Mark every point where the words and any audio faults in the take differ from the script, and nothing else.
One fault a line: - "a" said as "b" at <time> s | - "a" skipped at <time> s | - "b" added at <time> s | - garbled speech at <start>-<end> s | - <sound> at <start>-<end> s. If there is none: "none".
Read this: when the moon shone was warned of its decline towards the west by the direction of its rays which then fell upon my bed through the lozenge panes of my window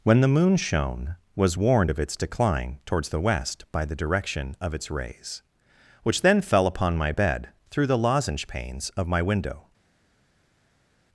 none